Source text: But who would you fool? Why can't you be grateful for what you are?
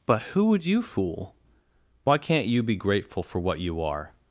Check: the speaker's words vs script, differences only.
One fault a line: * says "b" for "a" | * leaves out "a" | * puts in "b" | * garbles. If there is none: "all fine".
all fine